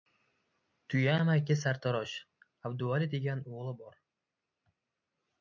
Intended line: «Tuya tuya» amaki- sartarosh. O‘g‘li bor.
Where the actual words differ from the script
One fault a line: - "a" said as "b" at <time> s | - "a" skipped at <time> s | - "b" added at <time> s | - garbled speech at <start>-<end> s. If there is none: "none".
- "tuya" skipped at 1.2 s
- "Abduvali degan" added at 2.7 s